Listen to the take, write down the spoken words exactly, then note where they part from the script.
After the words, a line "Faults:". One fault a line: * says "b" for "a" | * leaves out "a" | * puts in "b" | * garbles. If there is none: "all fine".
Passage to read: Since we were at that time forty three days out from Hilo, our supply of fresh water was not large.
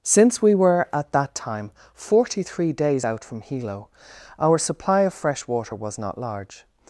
Since we were at that time forty three days out from Hilo, our supply of fresh water was not large.
Faults:
all fine